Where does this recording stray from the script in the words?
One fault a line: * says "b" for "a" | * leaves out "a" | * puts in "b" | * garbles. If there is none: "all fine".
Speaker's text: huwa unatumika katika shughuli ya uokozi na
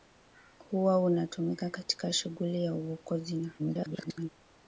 * garbles